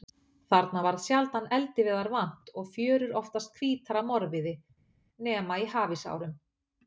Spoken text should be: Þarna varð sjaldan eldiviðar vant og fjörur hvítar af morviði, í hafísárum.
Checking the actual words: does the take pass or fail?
fail